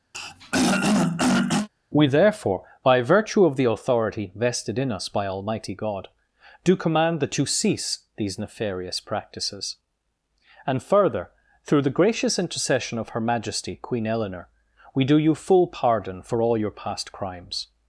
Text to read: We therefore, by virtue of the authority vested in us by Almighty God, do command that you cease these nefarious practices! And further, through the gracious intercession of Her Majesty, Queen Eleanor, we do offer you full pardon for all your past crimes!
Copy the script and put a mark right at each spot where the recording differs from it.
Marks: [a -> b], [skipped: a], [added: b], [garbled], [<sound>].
[throat clearing] We therefore, by virtue of the authority vested in us by Almighty God, do command that you cease these nefarious practices! And further, through the gracious intercession of Her Majesty, Queen Eleanor, we do [skipped: offer] you full pardon for all your past crimes!